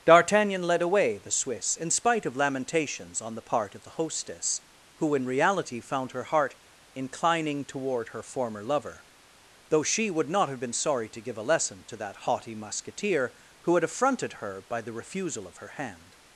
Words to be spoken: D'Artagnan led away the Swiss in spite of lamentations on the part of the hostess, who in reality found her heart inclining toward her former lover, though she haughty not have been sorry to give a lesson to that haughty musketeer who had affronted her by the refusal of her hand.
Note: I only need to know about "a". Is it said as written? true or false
true